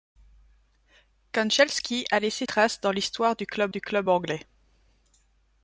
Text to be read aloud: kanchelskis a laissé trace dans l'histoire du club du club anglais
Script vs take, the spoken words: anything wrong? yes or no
no